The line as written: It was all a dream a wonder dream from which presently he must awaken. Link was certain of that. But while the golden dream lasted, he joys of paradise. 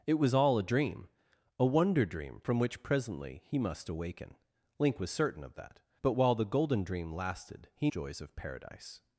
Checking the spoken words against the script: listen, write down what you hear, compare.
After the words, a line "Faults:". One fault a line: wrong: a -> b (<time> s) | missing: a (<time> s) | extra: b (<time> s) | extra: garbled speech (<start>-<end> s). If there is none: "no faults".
It was all a dream a wonder dream from which presently he must awaken. Link was certain of that. But while the golden dream lasted, he joys of paradise.
Faults:
no faults